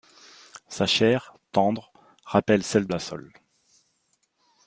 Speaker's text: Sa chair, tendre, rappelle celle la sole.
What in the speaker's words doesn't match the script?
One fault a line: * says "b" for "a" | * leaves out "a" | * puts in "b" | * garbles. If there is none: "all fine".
all fine